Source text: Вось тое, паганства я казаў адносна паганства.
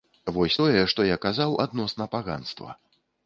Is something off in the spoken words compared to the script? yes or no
yes